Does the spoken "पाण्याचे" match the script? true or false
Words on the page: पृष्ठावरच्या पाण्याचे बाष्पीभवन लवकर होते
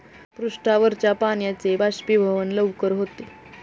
true